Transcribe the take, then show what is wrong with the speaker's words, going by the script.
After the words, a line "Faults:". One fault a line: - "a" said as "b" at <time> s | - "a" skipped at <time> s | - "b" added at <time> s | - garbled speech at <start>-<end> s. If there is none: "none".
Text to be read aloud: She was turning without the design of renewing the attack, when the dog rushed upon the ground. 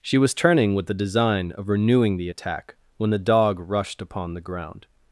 She was turning with the design of renewing the attack, when the dog rushed upon the ground.
Faults:
- "without" said as "with" at 0.7 s